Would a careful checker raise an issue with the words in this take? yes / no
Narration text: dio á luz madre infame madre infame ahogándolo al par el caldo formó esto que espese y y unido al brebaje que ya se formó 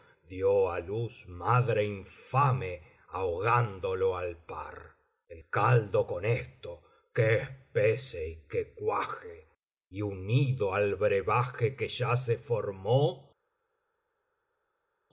yes